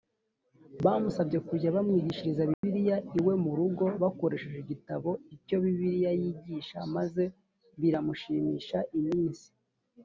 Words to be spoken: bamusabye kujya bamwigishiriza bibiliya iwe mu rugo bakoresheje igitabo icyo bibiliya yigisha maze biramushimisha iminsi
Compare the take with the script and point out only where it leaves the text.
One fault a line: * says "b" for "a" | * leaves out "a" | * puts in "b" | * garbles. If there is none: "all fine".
all fine